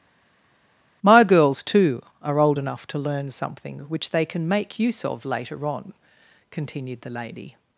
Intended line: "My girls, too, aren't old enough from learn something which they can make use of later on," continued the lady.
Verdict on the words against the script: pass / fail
fail